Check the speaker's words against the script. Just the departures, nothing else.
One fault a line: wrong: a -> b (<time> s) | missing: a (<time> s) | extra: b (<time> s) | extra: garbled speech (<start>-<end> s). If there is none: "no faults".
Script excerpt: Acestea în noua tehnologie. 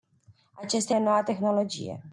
no faults